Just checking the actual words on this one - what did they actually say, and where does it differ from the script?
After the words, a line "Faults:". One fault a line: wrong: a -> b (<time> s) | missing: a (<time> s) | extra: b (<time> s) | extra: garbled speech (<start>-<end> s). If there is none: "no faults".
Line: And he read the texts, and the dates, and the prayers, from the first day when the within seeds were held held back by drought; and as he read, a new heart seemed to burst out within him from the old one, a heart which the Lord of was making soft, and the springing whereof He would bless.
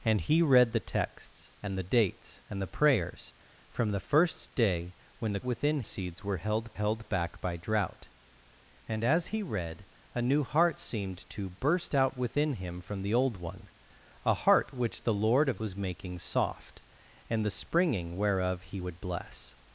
And he read the texts, and the dates, and the prayers, from the first day when the within seeds were held held back by drought; and as he read, a new heart seemed to burst out within him from the old one, a heart which the Lord of was making soft, and the springing whereof He would bless.
Faults:
no faults